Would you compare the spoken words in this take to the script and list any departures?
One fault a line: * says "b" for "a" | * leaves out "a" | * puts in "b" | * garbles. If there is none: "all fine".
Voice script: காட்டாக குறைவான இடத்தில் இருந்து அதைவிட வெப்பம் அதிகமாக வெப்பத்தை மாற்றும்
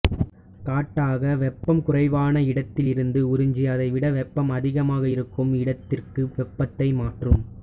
* puts in "வெப்பம்"
* puts in "உறிஞ்சி"
* puts in "இருக்கும் இடத்திற்கு"